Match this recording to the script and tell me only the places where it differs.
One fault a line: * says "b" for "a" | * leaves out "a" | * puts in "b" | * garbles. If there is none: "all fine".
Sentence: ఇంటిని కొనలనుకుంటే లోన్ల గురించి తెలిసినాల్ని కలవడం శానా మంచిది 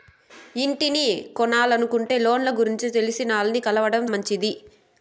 * leaves out "శానా"